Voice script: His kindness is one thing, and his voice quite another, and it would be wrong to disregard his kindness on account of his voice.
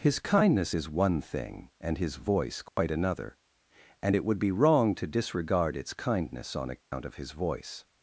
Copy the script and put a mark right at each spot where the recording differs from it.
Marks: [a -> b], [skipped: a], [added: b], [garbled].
His kindness is one thing, and his voice quite another, and it would be wrong to disregard [his -> its] kindness on account of his voice.